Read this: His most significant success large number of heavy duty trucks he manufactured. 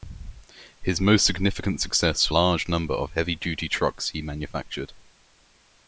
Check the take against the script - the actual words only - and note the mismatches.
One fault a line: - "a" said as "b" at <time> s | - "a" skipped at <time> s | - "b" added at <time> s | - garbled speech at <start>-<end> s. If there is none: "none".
none